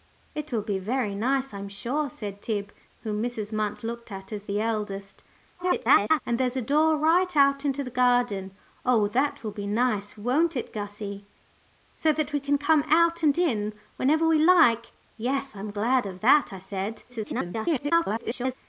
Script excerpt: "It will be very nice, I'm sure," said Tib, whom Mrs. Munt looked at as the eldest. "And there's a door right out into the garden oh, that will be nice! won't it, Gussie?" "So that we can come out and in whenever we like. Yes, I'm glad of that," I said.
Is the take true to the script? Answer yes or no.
no